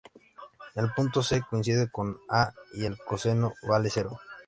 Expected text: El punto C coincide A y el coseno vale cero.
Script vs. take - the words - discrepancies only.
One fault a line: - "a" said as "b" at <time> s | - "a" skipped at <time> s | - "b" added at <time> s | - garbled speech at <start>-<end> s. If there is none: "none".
- "con" added at 1.9 s